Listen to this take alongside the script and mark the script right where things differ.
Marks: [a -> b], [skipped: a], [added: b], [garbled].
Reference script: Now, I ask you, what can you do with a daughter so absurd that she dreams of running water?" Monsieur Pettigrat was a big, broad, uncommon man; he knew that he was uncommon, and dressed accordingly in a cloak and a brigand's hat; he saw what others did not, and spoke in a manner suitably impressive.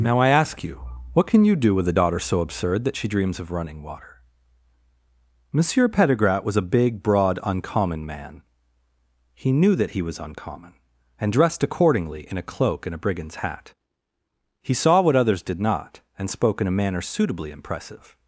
Now, I ask you, what can you do with a daughter so absurd that she dreams of running water?" Monsieur Pettigrat was a big, broad, uncommon man; he knew that he was uncommon, and dressed accordingly in a cloak and a brigand's hat; he saw what others did not, and spoke in a manner suitably impressive.